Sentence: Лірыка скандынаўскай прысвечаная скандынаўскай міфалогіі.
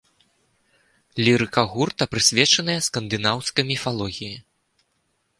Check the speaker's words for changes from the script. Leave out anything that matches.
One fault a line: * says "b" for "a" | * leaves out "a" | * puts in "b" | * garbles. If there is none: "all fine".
* says "гурта" for "скандынаўскай"